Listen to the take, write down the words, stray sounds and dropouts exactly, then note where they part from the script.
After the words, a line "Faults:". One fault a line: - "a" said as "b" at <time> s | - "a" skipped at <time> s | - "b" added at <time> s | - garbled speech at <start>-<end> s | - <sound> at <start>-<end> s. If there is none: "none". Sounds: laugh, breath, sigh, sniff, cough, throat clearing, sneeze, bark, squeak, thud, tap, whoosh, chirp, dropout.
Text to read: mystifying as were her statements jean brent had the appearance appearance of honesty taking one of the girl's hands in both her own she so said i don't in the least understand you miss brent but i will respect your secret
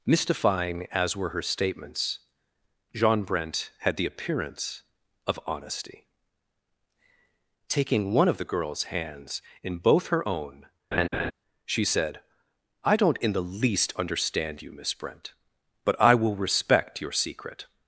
mystifying as were her statements jean brent had the appearance of honesty taking one of the girl's hands in both her own she said i don't in the least understand you miss brent but i will respect your secret
Faults:
- "appearance" skipped at 4.8 s
- laugh at 10.9-11.3 s
- "so" skipped at 11.8 s